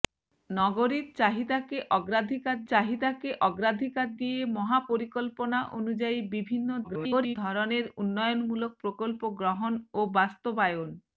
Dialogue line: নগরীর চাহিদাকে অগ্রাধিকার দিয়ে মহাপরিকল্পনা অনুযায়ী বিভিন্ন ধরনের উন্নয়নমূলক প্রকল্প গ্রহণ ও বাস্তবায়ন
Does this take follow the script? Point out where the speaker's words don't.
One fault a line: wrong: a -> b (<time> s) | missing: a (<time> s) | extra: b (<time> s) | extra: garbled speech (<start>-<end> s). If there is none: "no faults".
extra: চাহিদাকে অগ্রাধিকার (2.7 s)
extra: garbled speech (6.8-7.4 s)